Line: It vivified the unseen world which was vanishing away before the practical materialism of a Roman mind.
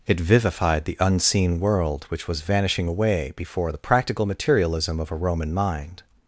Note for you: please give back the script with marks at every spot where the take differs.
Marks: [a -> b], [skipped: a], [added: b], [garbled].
It vivified the unseen world which was vanishing away before the practical materialism of a Roman mind.